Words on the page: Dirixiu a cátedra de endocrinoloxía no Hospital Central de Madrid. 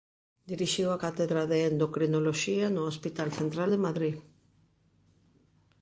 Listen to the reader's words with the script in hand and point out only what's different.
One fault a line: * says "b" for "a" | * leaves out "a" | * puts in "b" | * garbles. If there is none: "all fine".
all fine